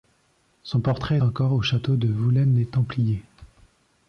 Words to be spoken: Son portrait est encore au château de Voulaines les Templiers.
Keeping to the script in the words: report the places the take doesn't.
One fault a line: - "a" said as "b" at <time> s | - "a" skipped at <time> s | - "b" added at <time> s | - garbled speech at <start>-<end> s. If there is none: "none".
- "est" skipped at 1.2 s